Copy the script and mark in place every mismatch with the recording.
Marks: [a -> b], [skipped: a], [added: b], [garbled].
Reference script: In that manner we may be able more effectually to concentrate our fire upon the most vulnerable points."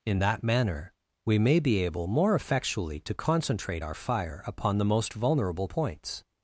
In that manner we may be able more effectually to concentrate our fire upon the most vulnerable points."